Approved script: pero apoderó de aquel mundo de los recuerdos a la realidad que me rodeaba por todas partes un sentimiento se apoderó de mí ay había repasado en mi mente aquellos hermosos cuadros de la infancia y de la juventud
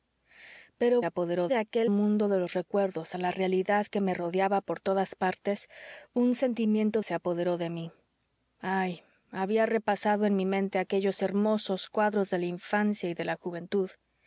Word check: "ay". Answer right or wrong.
right